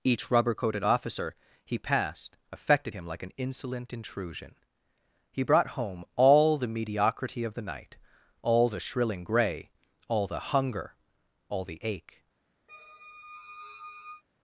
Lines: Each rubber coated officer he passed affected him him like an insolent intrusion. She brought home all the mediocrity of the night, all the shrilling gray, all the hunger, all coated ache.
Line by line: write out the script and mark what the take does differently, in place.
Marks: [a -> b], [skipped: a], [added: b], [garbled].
Each rubber coated officer he passed affected him [skipped: him] like an insolent intrusion. [She -> He] brought home all the mediocrity of the night, all the shrilling gray, all the hunger, all [coated -> the] ache.